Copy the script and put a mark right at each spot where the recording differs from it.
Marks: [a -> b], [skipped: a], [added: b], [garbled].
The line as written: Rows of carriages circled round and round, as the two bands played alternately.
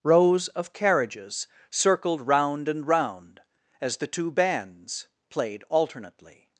Rows of carriages circled round and round, as the two bands played alternately.